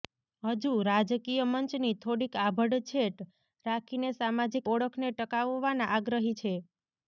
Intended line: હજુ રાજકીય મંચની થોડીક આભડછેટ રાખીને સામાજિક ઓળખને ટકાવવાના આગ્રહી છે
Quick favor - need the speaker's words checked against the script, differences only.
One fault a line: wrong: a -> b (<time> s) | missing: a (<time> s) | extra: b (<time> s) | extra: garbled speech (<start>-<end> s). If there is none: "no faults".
no faults